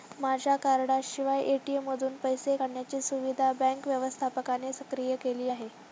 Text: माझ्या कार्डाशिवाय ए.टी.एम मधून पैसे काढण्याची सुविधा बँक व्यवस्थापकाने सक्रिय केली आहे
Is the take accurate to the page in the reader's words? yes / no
yes